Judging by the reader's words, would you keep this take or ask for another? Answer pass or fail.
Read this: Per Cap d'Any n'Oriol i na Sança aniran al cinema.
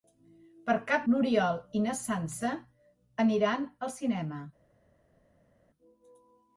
fail